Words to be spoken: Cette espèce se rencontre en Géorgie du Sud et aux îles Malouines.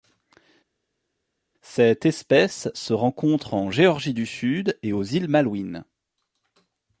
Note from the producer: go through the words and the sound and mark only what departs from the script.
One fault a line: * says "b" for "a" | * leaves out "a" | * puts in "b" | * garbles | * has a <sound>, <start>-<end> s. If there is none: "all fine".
all fine